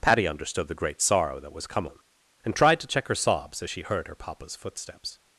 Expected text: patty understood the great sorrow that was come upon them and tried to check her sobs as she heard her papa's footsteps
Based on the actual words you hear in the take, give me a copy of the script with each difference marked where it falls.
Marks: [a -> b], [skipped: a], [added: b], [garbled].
patty understood the great sorrow that was come [skipped: upon] them and tried to check her sobs as she heard her papa's footsteps